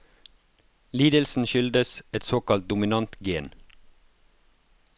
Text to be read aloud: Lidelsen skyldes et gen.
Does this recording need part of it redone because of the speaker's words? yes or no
yes